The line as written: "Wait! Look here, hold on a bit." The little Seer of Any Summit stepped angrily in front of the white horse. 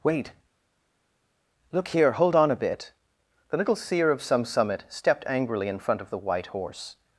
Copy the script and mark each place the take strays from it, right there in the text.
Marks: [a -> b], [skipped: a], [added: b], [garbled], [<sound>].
"Wait! Look here, hold on a bit." The little Seer of [Any -> Some] Summit stepped angrily in front of the white horse.